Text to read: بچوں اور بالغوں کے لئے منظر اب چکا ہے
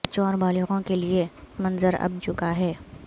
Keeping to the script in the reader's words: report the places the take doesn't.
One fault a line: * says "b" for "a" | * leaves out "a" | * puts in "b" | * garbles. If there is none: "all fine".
all fine